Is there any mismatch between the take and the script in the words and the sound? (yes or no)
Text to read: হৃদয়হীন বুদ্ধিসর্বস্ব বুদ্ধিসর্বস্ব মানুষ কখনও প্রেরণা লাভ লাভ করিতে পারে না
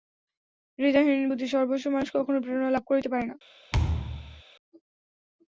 yes